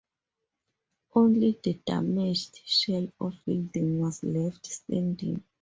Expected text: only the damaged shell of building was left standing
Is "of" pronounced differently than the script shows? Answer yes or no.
no